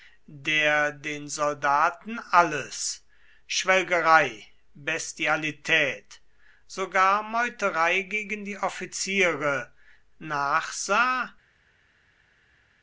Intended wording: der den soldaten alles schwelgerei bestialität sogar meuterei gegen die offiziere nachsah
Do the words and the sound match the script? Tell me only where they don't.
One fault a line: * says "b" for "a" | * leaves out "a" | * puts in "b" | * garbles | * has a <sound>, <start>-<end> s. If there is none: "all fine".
all fine